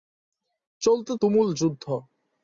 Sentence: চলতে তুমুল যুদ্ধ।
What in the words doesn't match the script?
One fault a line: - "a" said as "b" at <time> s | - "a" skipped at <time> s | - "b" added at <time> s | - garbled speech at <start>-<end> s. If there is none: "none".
none